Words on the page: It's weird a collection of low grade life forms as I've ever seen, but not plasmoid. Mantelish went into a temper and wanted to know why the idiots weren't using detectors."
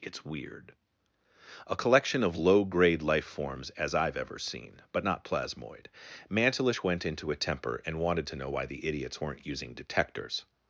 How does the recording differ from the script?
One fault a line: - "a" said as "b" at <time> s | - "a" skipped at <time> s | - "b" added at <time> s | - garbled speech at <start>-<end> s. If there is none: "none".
none